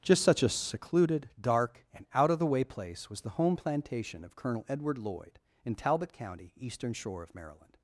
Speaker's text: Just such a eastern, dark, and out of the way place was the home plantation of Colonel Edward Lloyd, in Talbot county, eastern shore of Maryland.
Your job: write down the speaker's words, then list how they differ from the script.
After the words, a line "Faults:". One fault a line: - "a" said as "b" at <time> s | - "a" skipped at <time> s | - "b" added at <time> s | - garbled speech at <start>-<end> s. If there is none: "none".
Just such a secluded, dark, and out of the way place was the home plantation of Colonel Edward Lloyd, in Talbot county, eastern shore of Maryland.
Faults:
- "eastern" said as "secluded" at 0.5 s